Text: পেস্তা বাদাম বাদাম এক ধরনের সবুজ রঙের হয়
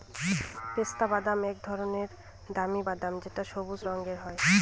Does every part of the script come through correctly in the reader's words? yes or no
no